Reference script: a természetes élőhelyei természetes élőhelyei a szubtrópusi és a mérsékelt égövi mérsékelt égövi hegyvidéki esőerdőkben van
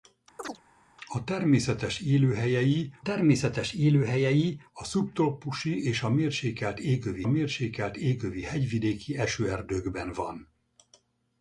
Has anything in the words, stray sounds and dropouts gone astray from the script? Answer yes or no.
yes